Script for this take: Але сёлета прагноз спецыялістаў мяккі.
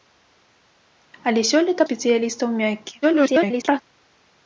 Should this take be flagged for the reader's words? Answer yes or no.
yes